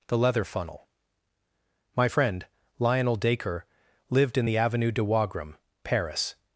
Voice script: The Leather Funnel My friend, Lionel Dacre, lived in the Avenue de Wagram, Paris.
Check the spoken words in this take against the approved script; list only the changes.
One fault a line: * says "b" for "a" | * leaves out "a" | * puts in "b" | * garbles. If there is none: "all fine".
all fine